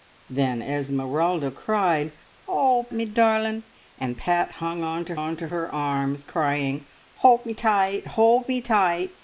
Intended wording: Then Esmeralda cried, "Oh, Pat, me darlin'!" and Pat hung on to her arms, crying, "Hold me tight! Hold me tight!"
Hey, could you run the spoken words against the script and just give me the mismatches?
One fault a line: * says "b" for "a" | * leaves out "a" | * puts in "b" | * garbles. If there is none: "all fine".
* leaves out "Pat"
* puts in "on to"